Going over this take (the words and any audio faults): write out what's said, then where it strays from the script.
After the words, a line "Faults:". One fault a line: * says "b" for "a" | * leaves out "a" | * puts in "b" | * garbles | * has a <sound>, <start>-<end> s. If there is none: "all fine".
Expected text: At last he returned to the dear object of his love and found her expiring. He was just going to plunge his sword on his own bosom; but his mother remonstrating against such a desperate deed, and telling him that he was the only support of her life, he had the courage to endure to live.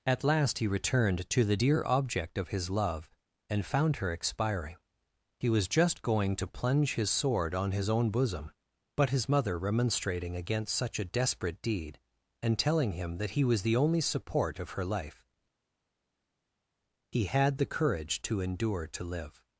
At last he returned to the dear object of his love and found her expiring. He was just going to plunge his sword on his own bosom; but his mother remonstrating against such a desperate deed, and telling him that he was the only support of her life, he had the courage to endure to live.
Faults:
all fine